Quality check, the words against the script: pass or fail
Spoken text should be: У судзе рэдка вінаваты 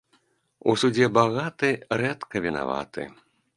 fail